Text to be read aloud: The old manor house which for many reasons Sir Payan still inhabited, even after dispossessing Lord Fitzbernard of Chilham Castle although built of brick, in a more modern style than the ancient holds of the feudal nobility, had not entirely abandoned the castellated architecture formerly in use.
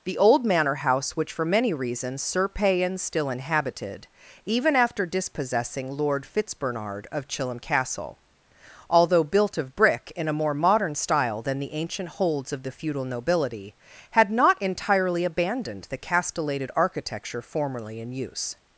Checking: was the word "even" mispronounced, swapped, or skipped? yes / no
no